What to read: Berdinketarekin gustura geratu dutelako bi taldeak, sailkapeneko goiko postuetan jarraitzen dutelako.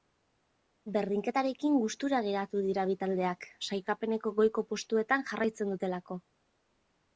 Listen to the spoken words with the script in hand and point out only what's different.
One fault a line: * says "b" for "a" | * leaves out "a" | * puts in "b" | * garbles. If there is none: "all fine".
* says "dira" for "dutelako"